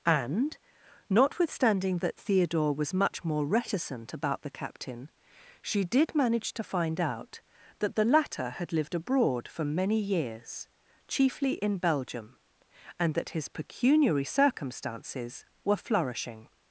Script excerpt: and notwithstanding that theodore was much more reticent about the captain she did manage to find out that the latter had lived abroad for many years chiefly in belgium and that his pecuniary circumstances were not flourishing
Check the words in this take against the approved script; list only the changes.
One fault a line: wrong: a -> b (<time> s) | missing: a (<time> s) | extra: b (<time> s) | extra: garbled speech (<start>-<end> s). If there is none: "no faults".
missing: not (15.8 s)